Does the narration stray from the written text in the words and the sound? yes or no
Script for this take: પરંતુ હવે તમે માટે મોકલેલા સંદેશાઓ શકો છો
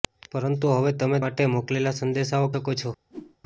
yes